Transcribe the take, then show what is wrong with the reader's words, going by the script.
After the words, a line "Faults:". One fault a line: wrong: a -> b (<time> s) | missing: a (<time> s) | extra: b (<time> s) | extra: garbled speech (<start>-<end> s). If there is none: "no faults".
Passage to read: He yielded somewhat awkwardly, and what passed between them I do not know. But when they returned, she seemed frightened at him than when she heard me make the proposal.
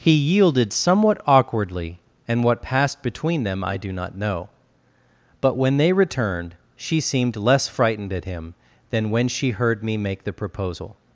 He yielded somewhat awkwardly, and what passed between them I do not know. But when they returned, she seemed less frightened at him than when she heard me make the proposal.
Faults:
extra: less (7.3 s)